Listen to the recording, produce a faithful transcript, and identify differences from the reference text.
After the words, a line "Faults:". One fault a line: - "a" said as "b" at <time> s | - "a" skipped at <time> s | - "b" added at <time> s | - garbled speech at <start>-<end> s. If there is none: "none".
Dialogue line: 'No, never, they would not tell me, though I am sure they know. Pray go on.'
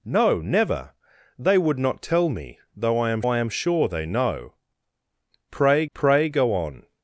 'No, never, they would not tell me, though I am I am sure they know. Pray pray go on.'
Faults:
- "I am" added at 3.3 s
- "pray" added at 5.9 s